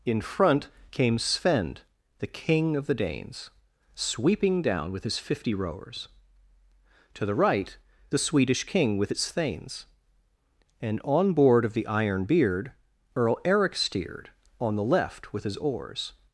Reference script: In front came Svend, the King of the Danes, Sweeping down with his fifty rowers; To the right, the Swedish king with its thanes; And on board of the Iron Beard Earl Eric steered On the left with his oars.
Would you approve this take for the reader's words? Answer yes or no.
yes